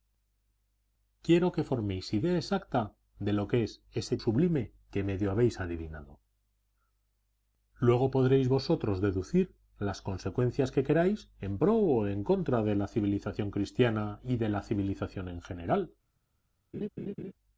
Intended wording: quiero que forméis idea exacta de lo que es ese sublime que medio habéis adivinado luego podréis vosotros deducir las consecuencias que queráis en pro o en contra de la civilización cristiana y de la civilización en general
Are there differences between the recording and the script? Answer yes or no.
no